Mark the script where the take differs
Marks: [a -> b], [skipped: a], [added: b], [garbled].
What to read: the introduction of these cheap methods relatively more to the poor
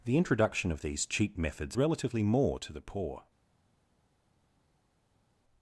the introduction of these cheap methods relatively more to the poor